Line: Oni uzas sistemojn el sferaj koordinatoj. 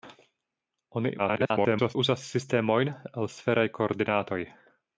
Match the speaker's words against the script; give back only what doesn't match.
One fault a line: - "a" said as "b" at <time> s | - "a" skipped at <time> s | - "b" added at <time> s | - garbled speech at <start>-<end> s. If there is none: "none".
- garbled speech at 1.2-2.0 s